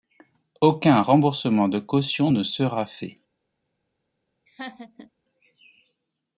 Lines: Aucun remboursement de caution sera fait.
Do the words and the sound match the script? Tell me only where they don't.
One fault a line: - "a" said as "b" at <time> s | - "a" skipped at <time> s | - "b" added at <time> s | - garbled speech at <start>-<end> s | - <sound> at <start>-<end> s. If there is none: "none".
- "ne" added at 2.3 s
- laugh at 4.5-5.1 s